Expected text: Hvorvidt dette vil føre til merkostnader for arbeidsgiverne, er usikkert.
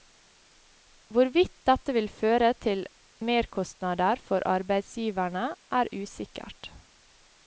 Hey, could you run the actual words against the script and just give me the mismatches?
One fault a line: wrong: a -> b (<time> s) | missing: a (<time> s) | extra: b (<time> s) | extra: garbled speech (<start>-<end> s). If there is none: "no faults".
no faults